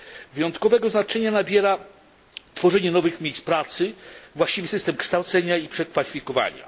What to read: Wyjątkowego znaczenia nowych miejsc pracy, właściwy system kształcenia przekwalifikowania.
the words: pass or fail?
fail